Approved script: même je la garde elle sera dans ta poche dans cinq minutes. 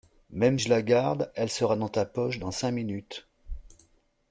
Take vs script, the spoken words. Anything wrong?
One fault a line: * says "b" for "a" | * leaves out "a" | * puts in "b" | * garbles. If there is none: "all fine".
all fine